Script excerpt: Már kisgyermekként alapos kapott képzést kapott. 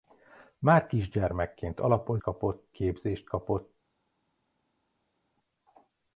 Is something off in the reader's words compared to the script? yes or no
no